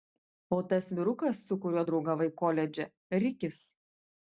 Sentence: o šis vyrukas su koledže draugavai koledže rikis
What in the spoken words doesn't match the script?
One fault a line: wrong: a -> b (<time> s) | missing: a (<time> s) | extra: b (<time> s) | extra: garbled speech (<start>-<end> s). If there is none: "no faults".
wrong: šis -> tas (0.7 s)
wrong: koledže -> kuriuo (1.7 s)